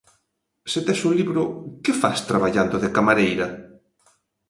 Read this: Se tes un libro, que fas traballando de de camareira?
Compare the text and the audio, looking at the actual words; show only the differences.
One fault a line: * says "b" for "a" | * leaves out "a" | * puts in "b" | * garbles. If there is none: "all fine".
* leaves out "de"